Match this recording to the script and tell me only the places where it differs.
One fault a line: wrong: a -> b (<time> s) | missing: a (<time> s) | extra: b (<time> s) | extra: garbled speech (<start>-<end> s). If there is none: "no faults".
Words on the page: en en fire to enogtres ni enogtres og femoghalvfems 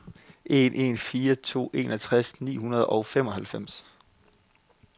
wrong: enogtres -> hundrede (2.6 s)